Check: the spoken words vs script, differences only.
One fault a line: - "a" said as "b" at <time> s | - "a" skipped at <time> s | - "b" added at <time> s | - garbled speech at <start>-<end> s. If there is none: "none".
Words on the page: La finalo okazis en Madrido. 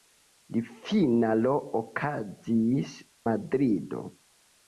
- "en" skipped at 3.0 s